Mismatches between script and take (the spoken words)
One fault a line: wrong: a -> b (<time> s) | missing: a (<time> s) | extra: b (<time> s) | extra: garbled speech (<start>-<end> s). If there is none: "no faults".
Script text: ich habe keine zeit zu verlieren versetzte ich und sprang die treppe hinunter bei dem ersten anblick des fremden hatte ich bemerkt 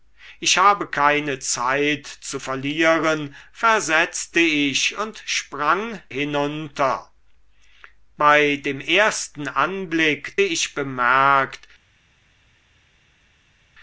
missing: die treppe (6.0 s)
missing: des fremden hatte (10.4 s)